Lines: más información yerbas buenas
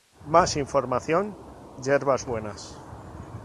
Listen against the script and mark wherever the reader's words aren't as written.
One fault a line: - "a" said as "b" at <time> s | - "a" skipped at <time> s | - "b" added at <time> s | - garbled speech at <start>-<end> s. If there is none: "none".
none